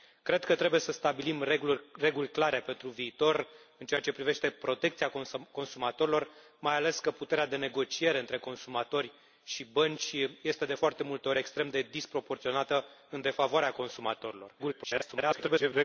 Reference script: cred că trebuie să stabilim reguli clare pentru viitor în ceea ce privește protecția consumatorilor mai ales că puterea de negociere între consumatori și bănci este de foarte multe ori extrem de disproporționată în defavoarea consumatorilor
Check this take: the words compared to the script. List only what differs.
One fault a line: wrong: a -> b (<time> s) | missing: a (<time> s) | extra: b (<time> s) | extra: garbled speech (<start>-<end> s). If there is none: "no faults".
extra: garbled speech (14.6-15.8 s)